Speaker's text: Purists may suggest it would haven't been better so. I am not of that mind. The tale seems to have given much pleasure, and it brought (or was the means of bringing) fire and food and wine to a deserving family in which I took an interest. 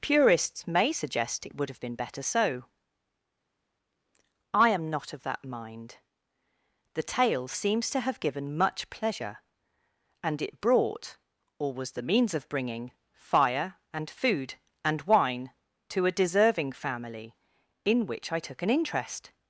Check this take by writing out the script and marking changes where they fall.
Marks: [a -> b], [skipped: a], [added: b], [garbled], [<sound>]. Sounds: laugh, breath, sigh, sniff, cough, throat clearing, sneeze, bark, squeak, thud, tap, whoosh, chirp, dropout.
Purists may suggest it would [haven't -> have] been better so. I am not of that mind. The tale seems to have given much pleasure, and it brought (or was the means of bringing) fire and food and wine to a deserving family in which I took an interest.